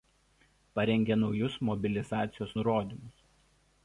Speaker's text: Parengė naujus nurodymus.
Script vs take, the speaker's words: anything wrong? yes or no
yes